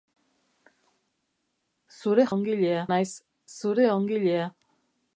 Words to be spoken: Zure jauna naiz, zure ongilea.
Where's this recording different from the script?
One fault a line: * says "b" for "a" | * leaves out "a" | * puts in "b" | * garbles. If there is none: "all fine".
* says "ongilea" for "jauna"